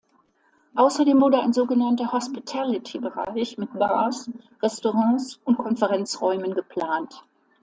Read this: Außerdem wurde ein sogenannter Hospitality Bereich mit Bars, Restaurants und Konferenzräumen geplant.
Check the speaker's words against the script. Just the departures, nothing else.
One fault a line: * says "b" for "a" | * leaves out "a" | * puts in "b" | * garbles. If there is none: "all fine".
all fine